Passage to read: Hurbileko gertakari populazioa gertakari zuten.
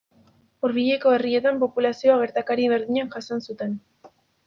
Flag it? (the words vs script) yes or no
yes